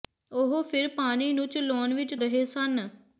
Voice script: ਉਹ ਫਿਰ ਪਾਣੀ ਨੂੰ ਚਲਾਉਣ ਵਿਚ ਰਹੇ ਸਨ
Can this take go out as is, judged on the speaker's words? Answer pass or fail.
pass